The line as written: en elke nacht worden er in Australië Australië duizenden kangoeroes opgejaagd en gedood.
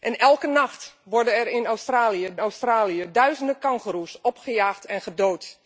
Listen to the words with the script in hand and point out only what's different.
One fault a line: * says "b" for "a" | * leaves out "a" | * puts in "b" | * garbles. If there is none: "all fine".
all fine